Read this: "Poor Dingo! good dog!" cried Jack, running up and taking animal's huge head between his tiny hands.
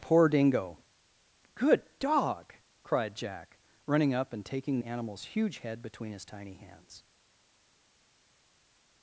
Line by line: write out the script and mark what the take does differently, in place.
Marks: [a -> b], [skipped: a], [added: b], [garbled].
"Poor Dingo! good dog!" cried Jack, running up and taking animal's huge head between his tiny hands.